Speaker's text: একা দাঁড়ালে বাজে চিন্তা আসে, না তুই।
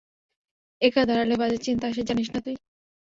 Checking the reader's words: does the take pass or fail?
fail